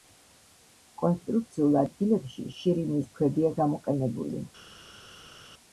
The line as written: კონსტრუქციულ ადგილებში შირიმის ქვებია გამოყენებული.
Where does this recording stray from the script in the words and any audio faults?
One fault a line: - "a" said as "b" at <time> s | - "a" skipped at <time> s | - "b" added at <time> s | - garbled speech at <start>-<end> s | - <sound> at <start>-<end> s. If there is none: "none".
none